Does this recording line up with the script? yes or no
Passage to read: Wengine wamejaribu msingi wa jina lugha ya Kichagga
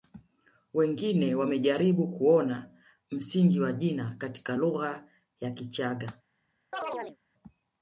no